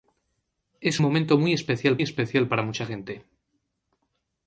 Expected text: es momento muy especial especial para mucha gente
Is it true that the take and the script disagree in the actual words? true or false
false